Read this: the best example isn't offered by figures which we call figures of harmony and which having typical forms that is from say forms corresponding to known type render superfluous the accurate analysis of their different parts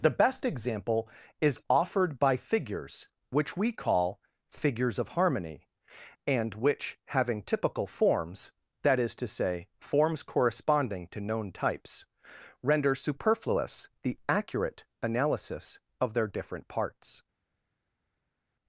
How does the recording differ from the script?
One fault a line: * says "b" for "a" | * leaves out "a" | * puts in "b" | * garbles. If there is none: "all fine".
* says "is" for "isn't"
* says "to" for "from"
* says "types" for "type"